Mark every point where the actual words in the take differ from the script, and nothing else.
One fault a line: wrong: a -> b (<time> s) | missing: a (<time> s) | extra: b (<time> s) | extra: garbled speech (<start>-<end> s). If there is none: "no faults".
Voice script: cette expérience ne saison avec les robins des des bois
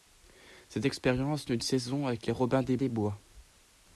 no faults